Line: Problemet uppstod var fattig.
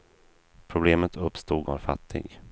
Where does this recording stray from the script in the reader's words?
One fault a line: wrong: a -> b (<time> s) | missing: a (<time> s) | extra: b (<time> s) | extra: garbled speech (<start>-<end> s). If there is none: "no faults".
no faults